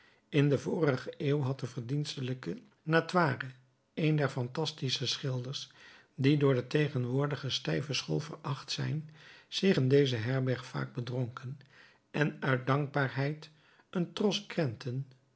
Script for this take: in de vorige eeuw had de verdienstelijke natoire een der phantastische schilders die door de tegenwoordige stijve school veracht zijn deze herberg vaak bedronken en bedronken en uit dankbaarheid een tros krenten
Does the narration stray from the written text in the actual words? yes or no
yes